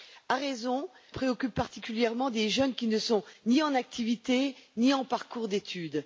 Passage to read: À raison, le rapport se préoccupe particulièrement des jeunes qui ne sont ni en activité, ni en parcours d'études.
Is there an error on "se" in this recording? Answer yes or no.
yes